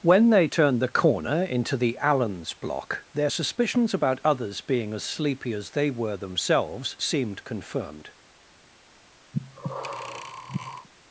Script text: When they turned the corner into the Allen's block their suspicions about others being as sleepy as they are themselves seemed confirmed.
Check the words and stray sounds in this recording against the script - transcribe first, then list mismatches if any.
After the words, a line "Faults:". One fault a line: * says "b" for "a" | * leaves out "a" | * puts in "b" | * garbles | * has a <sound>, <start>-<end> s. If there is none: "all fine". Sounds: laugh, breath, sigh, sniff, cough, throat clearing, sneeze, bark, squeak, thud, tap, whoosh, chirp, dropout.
When they turned the corner into the Allen's block their suspicions about others being as sleepy as they were themselves seemed confirmed.
Faults:
* says "were" for "are"
* has a breath, 9.3-10.9 s